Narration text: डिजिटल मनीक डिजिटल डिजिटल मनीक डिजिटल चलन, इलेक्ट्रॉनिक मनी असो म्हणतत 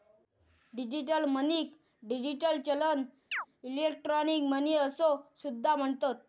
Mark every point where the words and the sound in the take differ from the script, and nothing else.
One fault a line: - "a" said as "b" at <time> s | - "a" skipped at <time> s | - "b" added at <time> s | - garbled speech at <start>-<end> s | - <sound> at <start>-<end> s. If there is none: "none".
- "डिजिटल मनीक डिजिटल" skipped at 2.6 s
- chirp at 3.3-3.5 s
- "सुद्धा" added at 5.4 s